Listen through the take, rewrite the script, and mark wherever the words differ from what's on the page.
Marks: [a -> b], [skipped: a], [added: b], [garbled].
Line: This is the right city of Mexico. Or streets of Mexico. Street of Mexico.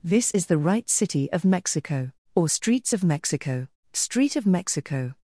This is the right city of Mexico. Or streets of Mexico. Street of Mexico.